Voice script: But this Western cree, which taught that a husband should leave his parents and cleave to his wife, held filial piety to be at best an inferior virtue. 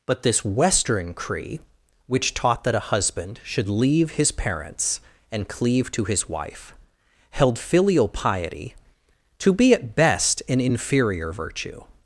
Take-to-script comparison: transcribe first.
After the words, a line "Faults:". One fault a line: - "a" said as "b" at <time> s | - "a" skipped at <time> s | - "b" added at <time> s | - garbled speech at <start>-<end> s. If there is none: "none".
But this Western cree, which taught that a husband should leave his parents and cleave to his wife, held filial piety to be at best an inferior virtue.
Faults:
none